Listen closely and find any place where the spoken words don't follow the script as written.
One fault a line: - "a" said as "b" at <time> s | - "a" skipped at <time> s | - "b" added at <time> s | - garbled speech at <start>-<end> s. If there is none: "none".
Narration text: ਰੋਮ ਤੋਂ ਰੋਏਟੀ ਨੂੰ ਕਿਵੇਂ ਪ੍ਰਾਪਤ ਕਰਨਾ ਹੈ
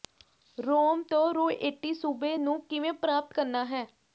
- "ਸੂਬੇ" added at 1.9 s